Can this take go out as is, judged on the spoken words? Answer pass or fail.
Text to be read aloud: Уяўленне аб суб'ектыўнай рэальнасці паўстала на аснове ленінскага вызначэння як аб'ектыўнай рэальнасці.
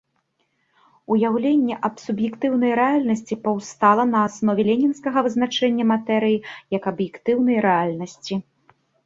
fail